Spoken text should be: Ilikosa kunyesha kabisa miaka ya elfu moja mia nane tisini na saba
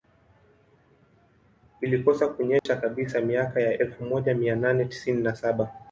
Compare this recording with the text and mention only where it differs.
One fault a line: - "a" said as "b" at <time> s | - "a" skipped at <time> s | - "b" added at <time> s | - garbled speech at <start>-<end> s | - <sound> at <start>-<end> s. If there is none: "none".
- dropout at 2.6-2.7 s